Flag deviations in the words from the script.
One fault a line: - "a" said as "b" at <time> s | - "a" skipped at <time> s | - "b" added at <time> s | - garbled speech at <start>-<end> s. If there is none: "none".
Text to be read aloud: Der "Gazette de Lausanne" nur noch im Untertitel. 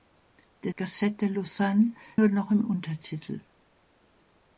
none